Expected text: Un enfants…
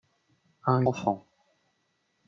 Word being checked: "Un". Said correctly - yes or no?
yes